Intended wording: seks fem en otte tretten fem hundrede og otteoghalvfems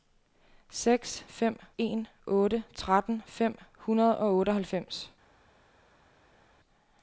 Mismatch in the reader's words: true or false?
false